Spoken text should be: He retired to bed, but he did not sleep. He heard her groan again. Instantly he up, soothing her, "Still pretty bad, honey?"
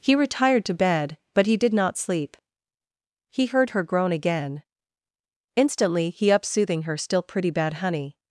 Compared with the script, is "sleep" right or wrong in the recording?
right